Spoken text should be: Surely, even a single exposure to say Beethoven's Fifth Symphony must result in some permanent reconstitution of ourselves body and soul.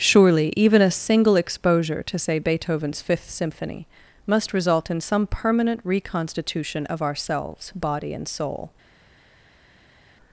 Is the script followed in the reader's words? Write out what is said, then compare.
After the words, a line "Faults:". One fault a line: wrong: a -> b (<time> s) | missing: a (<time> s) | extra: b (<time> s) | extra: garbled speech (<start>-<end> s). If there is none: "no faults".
Surely, even a single exposure to say Beethoven's Fifth Symphony must result in some permanent reconstitution of ourselves body and soul.
Faults:
no faults